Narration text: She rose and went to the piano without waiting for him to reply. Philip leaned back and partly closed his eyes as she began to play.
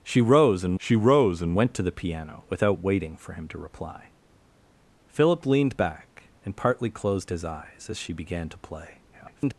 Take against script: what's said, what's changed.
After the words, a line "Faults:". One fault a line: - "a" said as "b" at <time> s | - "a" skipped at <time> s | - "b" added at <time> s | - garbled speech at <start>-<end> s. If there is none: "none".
She rose and she rose and went to the piano without waiting for him to reply. Philip leaned back and partly closed his eyes as she began to play. [garbled]
Faults:
- "she rose and" added at 0.8 s
- garbled speech at 9.1-9.5 s